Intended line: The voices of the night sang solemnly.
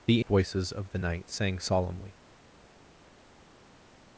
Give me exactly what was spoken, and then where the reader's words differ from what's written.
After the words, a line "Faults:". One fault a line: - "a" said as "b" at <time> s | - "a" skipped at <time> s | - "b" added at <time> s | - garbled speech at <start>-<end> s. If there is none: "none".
The voices of the night sang solemnly.
Faults:
none